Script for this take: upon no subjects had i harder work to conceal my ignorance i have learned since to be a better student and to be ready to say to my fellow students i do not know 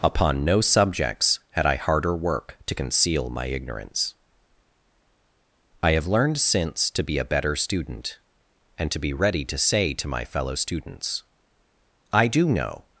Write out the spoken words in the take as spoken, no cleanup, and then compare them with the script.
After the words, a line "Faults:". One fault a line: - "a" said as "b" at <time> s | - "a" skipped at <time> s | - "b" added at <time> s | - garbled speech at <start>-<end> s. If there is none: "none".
upon no subjects had i harder work to conceal my ignorance i have learned since to be a better student and to be ready to say to my fellow students i do know
Faults:
- "not" skipped at 12.5 s